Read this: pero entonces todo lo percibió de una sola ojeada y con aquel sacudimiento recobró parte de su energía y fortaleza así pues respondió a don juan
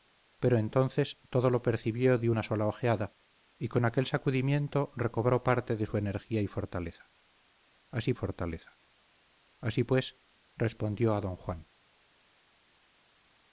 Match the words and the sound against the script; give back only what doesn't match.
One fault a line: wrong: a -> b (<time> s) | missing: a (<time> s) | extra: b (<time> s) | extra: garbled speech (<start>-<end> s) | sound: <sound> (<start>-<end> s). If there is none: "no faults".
extra: fortaleza así (8.1 s)